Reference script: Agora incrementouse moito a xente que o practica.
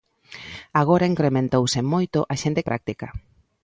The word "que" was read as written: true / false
false